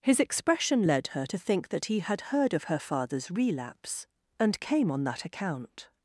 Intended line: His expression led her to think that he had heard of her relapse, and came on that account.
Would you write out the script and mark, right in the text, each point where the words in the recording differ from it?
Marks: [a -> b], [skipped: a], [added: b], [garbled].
His expression led her to think that he had heard of her [added: father's] relapse, and came on that account.